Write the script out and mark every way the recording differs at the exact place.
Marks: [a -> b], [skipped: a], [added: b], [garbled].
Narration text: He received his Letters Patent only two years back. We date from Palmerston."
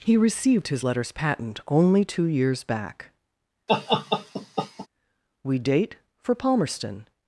He received his Letters Patent only two years back. We date [from -> for] Palmerston."